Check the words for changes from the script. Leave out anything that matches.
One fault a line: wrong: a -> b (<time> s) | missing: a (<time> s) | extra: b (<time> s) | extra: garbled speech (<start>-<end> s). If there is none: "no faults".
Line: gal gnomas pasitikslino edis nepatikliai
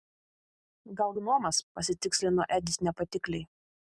no faults